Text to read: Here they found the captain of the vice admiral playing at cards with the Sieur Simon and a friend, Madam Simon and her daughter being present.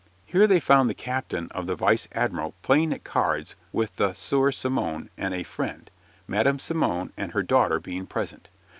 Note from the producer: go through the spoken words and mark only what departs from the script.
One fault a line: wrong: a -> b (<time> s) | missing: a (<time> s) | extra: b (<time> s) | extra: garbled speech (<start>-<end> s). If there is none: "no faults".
no faults